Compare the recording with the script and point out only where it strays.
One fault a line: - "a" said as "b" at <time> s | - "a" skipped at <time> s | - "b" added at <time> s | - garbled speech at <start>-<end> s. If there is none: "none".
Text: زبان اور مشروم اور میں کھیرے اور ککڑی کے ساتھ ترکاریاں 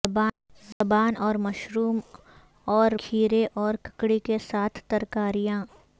- "میں" skipped at 2.9 s